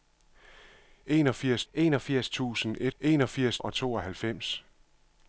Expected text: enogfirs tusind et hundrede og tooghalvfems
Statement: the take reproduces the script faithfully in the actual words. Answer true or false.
false